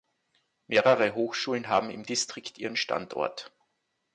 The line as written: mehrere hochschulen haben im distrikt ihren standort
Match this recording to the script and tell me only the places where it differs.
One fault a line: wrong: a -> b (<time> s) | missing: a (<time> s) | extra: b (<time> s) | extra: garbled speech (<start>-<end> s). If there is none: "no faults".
no faults